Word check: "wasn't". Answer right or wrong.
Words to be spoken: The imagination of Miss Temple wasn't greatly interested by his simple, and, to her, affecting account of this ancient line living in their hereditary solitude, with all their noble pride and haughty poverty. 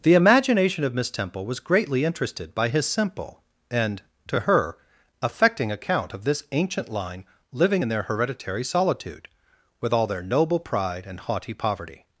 wrong